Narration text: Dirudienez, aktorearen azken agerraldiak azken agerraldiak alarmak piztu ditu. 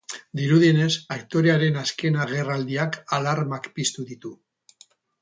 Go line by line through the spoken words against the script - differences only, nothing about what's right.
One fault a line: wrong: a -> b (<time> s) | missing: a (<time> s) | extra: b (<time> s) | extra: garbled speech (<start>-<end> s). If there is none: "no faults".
missing: azken agerraldiak (3.0 s)